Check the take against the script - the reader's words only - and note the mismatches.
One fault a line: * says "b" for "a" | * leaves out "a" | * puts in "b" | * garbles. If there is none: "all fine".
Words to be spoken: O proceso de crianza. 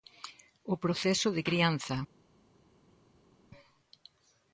all fine